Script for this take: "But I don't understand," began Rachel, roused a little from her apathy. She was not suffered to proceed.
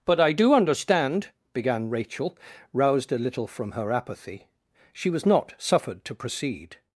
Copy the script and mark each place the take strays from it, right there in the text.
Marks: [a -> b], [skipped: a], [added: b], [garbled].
"But I [don't -> do] understand," began Rachel, roused a little from her apathy. She was not suffered to proceed.